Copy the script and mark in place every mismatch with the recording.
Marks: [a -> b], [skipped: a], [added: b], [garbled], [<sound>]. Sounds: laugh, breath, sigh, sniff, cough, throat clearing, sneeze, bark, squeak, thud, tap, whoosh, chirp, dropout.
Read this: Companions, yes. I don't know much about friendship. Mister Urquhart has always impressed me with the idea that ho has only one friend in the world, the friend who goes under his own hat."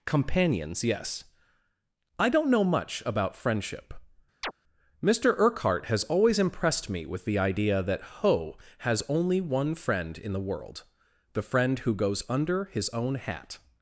Companions, yes. I don't know much about friendship. [chirp] Mister Urquhart has always impressed me with the idea that ho has only one friend in the world, the friend who goes under his own hat."